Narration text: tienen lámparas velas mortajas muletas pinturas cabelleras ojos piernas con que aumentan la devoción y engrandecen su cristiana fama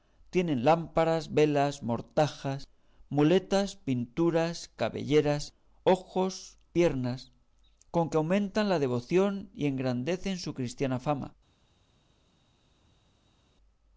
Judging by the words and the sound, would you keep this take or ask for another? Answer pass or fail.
pass